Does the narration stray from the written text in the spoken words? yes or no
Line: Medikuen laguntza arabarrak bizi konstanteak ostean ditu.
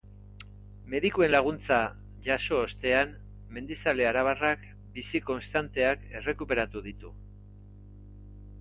yes